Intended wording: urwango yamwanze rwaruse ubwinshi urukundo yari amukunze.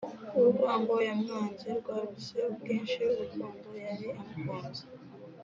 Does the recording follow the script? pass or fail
pass